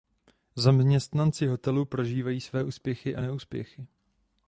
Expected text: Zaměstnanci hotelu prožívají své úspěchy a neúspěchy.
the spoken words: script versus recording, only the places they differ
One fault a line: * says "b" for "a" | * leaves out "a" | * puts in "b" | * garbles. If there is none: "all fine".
all fine